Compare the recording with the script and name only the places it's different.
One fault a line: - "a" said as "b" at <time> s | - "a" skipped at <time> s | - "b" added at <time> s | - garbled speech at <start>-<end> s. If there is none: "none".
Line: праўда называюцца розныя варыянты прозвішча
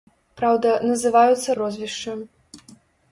- "розныя варыянты" skipped at 1.6 s